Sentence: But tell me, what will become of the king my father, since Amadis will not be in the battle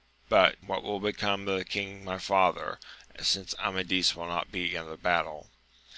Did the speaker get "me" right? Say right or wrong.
wrong